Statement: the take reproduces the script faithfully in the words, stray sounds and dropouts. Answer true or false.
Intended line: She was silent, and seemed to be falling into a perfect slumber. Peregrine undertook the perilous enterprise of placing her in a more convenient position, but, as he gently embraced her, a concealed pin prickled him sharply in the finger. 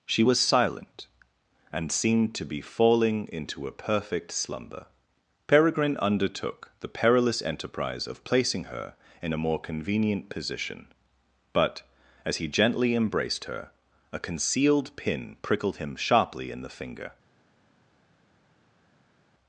true